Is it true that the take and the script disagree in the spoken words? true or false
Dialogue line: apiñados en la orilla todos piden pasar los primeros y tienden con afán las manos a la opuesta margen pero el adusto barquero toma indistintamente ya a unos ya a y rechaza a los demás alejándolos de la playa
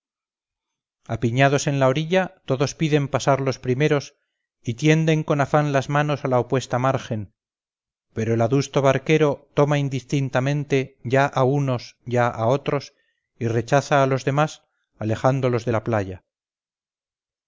true